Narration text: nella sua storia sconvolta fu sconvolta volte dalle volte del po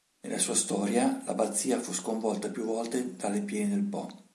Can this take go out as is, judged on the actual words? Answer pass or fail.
fail